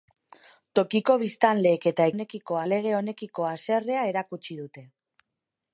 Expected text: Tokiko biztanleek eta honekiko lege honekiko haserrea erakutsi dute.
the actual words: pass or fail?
pass